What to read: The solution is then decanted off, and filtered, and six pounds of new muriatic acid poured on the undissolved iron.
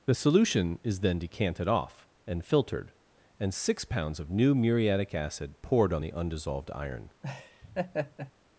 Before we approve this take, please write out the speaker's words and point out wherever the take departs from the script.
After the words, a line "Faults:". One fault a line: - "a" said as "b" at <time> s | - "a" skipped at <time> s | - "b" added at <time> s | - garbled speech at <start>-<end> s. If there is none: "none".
The solution is then decanted off, and filtered, and six pounds of new muriatic acid poured on the undissolved iron.
Faults:
none